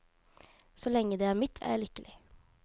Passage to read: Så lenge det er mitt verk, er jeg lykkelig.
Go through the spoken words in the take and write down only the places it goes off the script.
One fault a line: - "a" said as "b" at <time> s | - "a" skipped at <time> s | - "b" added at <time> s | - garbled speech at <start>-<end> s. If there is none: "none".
- "verk" skipped at 1.6 s